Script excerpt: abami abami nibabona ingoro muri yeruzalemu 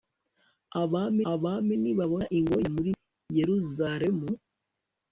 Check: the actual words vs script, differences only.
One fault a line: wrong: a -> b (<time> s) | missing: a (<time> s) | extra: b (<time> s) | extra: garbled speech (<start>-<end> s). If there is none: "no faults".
no faults